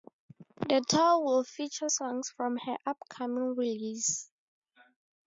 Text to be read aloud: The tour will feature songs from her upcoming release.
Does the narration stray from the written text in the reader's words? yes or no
no